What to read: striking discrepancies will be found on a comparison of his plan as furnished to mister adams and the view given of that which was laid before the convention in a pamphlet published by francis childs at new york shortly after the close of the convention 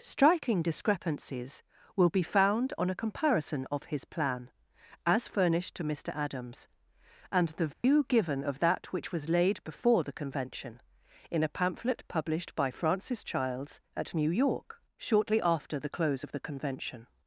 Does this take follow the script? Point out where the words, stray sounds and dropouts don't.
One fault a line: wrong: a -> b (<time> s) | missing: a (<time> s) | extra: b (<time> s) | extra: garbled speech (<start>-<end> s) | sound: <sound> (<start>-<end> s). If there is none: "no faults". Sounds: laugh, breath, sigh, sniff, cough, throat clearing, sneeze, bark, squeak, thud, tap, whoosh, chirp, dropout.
sound: dropout (7.7-7.8 s)